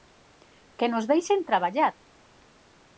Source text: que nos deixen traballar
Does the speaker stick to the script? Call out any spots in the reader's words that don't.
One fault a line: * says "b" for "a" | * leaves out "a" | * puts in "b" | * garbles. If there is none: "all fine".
all fine